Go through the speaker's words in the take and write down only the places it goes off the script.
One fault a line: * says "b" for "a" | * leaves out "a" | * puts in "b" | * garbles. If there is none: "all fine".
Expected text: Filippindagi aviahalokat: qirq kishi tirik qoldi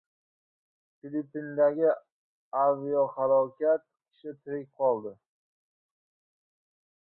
* leaves out "qirq"